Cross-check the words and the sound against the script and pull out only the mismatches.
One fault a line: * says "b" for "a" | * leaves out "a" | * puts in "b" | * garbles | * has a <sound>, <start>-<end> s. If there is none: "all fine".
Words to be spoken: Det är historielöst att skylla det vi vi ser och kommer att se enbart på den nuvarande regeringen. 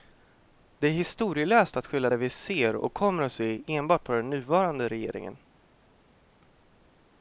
* leaves out "vi"